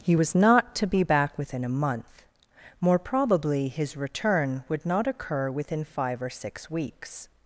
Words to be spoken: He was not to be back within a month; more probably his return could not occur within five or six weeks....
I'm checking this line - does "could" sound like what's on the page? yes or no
no